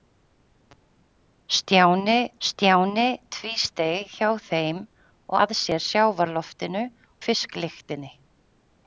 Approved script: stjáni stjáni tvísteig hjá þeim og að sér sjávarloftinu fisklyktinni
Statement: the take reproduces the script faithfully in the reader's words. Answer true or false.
true